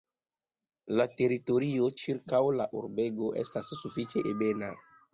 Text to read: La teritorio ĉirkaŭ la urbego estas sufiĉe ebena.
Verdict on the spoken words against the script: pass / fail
pass